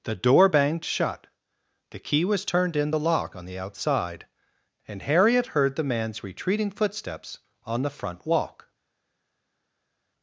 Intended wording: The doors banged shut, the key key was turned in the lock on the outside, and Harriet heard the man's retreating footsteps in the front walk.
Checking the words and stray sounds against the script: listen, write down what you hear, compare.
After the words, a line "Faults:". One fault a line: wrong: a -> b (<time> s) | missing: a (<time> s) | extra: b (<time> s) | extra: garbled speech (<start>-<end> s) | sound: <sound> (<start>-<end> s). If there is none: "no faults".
The door banged shut, the key was turned in the lock on the outside, and Harriet heard the man's retreating footsteps on the front walk.
Faults:
wrong: doors -> door (0.1 s)
missing: key (2.2 s)
wrong: in -> on (7.6 s)